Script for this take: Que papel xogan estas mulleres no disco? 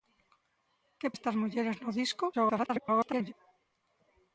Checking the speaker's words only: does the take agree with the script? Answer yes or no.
no